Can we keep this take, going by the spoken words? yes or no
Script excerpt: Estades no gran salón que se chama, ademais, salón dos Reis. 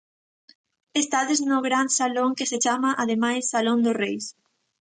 yes